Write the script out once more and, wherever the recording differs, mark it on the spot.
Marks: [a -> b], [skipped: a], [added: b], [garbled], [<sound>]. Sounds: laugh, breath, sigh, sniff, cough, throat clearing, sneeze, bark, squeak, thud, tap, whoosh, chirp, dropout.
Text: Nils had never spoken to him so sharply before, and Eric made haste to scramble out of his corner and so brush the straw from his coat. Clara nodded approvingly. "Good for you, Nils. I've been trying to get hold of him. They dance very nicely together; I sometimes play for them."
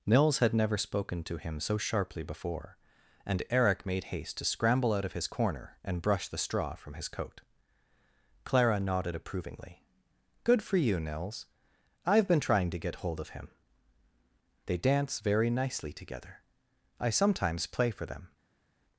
Nils had never spoken to him so sharply before, and Eric made haste to scramble out of his corner and [skipped: so] brush the straw from his coat. Clara nodded approvingly. "Good for you, Nils. I've been trying to get hold of him. They dance very nicely together; I sometimes play for them."